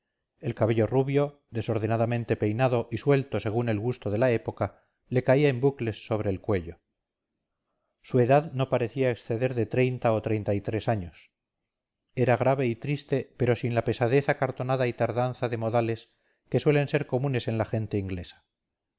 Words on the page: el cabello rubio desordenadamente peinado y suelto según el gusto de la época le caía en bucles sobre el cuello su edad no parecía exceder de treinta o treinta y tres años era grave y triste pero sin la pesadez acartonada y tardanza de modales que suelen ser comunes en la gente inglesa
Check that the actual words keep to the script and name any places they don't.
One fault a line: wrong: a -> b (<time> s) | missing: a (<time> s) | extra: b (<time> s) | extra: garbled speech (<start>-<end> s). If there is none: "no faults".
no faults